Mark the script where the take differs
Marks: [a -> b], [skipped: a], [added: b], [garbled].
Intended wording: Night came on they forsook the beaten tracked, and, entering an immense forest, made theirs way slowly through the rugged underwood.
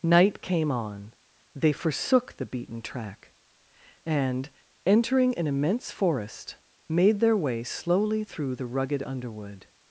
Night came on they forsook the beaten [tracked, -> track] and, entering an immense forest, made [theirs -> their] way slowly through the rugged underwood.